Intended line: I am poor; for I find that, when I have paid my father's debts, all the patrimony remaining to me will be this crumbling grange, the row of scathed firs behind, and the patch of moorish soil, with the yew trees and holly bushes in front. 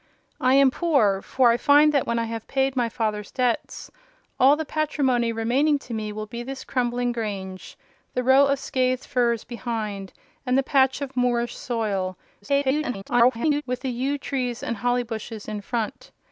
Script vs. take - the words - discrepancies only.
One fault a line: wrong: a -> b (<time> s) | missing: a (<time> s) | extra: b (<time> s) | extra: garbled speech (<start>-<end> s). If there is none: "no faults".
extra: garbled speech (12.4-13.6 s)